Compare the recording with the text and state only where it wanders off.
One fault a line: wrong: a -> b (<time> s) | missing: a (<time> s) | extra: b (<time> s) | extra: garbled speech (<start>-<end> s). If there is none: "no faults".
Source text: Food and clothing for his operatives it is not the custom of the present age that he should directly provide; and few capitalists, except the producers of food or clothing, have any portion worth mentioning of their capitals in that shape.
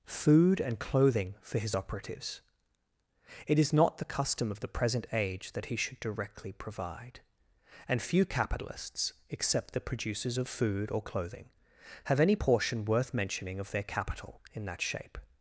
wrong: capitals -> capital (13.8 s)